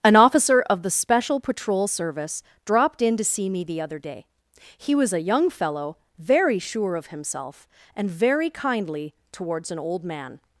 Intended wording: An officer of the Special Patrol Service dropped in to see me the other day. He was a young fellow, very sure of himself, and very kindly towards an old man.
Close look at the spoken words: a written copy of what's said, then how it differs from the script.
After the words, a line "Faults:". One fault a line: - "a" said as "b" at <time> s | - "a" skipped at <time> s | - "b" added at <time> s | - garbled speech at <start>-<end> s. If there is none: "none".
An officer of the Special Patrol Service dropped in to see me the other day. He was a young fellow, very sure of himself, and very kindly towards an old man.
Faults:
none